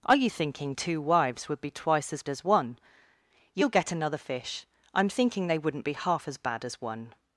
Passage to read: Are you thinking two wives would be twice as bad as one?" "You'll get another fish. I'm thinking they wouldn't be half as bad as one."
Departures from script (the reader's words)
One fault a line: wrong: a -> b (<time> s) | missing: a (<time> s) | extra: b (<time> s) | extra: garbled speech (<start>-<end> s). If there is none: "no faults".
missing: bad (2.2 s)